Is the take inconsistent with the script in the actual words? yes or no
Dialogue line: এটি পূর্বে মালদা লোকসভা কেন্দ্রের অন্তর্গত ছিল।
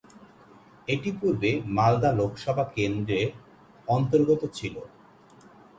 no